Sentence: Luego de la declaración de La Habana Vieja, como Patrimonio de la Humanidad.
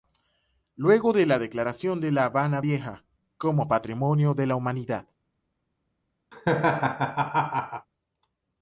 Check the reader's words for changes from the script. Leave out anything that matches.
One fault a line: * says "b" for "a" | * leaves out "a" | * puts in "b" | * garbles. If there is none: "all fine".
all fine